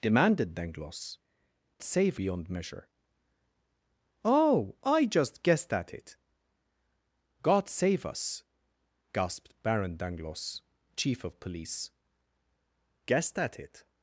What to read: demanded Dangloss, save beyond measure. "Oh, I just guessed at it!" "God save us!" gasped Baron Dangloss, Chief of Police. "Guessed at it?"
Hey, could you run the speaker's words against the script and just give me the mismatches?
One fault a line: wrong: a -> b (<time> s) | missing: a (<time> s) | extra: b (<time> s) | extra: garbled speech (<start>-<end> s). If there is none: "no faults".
no faults